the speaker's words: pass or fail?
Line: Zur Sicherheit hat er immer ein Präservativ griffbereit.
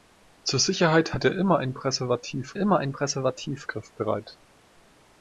fail